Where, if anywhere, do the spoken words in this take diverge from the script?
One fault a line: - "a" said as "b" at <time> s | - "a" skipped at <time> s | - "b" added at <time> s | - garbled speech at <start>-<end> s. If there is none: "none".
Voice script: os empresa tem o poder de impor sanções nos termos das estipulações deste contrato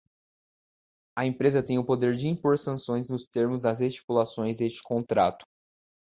- "os" said as "a" at 1.1 s